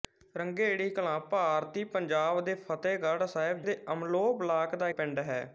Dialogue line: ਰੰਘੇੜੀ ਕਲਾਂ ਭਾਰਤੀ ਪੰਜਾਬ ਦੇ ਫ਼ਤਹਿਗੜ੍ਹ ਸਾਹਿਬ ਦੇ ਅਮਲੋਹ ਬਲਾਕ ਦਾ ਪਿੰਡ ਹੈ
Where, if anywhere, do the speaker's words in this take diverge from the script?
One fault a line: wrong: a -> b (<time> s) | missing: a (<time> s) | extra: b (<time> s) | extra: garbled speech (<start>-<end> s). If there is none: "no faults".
no faults